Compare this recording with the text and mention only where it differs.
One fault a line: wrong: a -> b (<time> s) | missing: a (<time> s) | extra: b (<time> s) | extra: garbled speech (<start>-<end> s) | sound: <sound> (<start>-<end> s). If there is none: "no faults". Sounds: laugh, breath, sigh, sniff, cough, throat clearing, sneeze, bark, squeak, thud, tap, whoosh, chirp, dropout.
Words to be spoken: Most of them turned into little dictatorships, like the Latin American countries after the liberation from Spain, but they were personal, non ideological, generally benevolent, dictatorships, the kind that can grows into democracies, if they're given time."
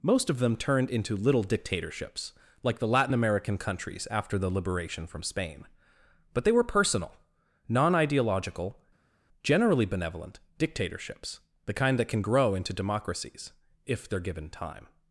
wrong: grows -> grow (12.2 s)